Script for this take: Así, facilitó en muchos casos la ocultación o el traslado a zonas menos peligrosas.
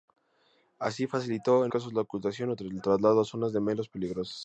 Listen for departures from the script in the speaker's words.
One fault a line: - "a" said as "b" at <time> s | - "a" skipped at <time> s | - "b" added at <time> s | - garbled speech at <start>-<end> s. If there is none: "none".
- "muchos" skipped at 1.7 s